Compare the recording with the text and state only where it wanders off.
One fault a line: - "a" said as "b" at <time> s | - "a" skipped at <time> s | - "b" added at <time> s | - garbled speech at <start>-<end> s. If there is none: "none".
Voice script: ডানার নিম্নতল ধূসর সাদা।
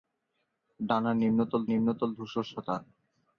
- "নিম্নতল" added at 1.7 s